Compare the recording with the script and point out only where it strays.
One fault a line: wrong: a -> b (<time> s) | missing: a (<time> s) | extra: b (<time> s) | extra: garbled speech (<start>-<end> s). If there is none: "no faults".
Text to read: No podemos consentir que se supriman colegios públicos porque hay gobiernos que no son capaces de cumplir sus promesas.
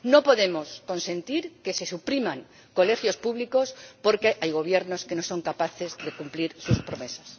no faults